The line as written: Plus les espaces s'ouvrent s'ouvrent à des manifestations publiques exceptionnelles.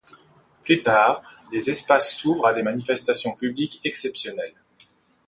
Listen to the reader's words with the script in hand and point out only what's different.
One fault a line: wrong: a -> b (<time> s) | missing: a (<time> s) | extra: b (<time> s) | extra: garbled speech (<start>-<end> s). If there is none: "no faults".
extra: tard (0.8 s)
missing: s'ouvrent (2.5 s)